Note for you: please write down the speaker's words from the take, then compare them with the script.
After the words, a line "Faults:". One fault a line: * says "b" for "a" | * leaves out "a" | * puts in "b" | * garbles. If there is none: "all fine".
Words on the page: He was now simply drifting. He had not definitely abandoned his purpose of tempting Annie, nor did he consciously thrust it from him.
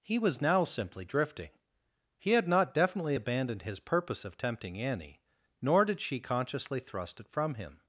He was now simply drifting. He had not definitely abandoned his purpose of tempting Annie, nor did she consciously thrust it from him.
Faults:
* says "she" for "he"